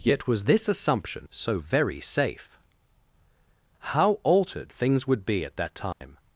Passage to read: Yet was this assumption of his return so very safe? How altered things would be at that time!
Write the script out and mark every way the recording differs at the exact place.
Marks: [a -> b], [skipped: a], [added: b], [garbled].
Yet was this assumption [skipped: of his return] so very safe? How altered things would be at that time!